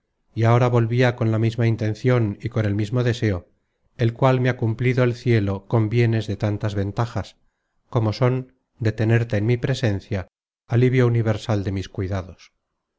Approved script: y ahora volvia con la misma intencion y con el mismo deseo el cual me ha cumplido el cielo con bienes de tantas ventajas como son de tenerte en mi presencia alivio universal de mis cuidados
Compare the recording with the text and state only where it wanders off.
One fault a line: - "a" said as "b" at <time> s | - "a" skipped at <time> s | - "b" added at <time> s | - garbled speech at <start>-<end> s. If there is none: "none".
none